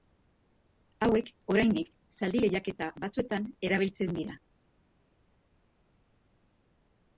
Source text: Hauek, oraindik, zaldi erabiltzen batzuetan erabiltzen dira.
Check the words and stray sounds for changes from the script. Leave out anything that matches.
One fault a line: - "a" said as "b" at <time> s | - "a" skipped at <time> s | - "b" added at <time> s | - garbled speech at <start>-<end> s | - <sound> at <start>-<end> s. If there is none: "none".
- "erabiltzen" said as "lehiaketa" at 2.5 s